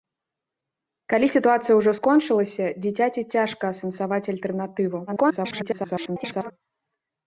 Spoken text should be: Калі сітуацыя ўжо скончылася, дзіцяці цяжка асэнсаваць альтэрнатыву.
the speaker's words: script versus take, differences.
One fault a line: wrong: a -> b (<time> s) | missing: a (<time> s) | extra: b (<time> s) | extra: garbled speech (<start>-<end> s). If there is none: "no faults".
extra: garbled speech (5.1-6.5 s)